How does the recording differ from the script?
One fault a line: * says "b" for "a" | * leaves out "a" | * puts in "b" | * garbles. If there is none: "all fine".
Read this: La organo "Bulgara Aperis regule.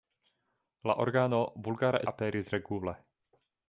all fine